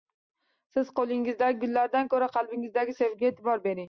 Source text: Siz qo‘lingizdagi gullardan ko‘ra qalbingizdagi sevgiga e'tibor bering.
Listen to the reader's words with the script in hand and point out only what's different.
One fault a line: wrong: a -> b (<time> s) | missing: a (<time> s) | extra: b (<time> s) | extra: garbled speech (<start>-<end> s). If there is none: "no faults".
no faults